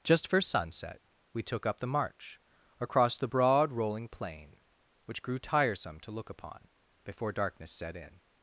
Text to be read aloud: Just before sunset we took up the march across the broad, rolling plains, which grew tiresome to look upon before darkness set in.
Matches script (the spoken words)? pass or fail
fail